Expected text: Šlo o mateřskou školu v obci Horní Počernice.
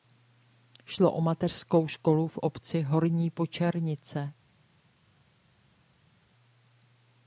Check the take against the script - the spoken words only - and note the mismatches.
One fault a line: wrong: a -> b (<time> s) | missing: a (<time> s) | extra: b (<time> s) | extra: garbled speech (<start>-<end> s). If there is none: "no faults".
no faults